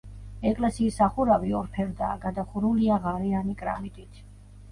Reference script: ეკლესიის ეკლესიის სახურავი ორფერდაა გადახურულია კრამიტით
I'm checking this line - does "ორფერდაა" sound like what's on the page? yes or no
yes